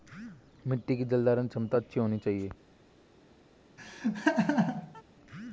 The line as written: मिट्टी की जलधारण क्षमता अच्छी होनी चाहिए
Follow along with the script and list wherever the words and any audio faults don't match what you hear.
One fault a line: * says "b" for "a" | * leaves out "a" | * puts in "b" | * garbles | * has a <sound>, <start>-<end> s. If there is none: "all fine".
* has a laugh, 3.8-5.0 s